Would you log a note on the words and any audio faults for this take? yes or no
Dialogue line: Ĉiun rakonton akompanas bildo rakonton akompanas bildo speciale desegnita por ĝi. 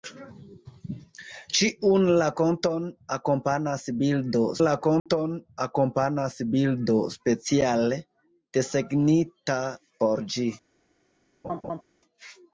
yes